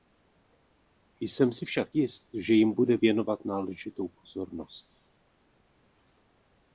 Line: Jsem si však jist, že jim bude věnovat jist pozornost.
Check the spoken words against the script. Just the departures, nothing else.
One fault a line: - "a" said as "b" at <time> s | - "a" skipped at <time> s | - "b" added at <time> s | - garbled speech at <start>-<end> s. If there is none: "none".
- "jist" said as "náležitou" at 3.4 s